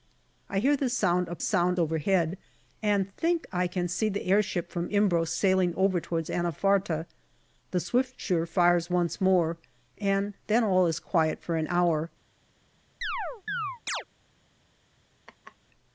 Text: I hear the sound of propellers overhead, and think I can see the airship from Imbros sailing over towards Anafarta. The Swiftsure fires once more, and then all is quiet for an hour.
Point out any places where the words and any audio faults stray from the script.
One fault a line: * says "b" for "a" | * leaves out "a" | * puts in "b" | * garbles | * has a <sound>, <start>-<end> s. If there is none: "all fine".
* says "sound" for "propellers"
* has a chirp, 13.0-14.0 s
* has a laugh, 15.3-15.6 s